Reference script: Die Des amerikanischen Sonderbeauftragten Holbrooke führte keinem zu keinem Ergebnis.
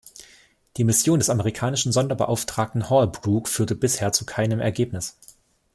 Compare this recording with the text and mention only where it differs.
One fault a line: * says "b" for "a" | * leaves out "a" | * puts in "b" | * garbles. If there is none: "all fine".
* puts in "Mission"
* says "bisher" for "keinem"